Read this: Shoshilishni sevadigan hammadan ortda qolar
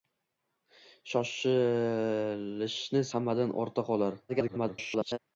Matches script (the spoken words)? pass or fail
fail